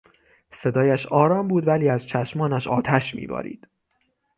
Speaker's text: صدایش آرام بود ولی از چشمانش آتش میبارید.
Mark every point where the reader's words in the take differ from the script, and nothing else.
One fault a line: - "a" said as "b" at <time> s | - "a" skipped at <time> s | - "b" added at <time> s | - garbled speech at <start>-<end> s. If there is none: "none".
none